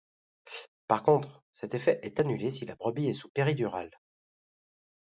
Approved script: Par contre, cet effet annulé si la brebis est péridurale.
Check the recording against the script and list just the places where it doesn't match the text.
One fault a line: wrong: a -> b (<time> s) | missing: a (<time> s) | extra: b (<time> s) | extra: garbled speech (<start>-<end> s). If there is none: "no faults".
extra: est (2.0 s)
extra: sous (3.1 s)